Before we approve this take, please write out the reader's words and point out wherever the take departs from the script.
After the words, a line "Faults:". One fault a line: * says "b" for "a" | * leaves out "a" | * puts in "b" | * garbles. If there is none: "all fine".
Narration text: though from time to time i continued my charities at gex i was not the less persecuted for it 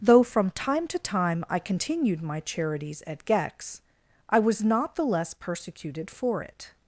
though from time to time i continued my charities at gex i was not the less persecuted for it
Faults:
all fine